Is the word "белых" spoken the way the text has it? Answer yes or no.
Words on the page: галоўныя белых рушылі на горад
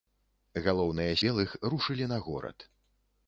yes